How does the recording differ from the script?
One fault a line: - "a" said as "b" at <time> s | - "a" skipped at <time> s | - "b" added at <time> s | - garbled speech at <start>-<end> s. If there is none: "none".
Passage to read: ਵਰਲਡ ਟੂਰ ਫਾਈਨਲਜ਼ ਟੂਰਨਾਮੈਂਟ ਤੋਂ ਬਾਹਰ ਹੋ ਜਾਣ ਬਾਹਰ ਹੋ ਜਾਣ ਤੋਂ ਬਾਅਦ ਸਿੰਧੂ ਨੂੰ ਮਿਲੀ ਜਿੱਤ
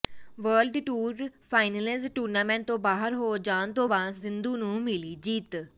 - "ਬਾਹਰ ਹੋ ਜਾਣ" skipped at 3.7 s